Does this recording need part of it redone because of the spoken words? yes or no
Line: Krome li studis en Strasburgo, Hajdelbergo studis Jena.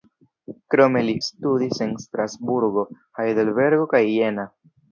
yes